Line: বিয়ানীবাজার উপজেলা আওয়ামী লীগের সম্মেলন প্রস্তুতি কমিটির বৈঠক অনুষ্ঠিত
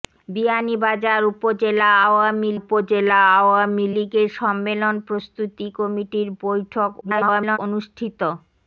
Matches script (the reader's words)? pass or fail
fail